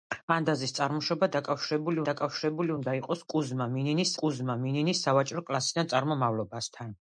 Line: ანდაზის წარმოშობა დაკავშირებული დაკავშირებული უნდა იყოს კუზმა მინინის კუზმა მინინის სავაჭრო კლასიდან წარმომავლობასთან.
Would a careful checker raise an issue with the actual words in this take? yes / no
no